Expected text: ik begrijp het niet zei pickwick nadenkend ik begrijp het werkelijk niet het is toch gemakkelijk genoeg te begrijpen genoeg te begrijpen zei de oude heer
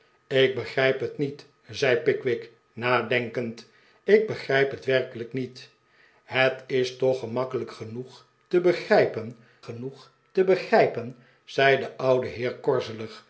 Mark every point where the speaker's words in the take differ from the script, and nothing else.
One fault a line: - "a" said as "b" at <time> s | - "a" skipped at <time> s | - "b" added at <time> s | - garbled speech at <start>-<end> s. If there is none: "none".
none